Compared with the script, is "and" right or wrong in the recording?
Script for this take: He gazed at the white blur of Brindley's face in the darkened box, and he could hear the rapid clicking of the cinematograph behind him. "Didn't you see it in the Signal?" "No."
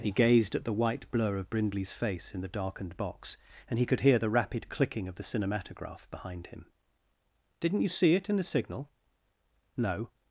right